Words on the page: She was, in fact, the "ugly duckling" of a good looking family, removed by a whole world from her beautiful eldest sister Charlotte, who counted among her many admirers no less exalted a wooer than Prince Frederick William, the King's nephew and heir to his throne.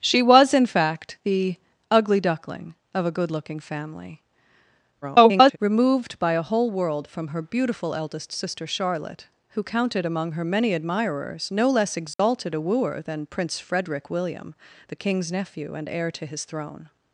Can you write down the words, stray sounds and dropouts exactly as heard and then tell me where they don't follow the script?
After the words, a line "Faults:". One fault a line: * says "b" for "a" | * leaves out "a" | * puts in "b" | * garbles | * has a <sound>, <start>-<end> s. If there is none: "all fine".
She was, in fact, the "ugly duckling" of a good looking family, [garbled] removed by a whole world from her beautiful eldest sister Charlotte, who counted among her many admirers no less exalted a wooer than Prince Frederick William, the King's nephew and heir to his throne.
Faults:
* garbles
* has a dropout, 12.1-12.2 s